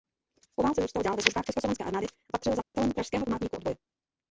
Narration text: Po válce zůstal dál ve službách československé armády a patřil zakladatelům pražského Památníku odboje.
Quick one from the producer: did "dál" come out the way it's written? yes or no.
yes